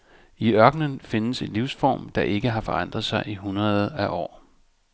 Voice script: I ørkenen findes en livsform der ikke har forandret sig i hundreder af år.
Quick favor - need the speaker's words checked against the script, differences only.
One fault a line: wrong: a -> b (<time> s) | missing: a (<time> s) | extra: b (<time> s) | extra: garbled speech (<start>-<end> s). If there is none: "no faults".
no faults